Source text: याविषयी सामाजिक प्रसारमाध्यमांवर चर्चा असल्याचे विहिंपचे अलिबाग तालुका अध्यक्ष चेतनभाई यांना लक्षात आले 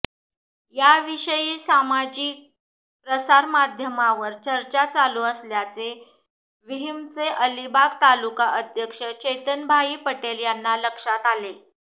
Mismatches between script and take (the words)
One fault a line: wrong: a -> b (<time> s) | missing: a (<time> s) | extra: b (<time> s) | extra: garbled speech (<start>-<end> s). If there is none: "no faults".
extra: चालू (4.9 s)
extra: पटेल (10.1 s)